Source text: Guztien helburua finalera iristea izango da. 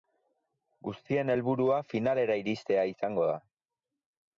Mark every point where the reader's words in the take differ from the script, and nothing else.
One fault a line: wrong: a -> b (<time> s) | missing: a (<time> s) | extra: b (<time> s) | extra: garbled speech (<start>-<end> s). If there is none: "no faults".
no faults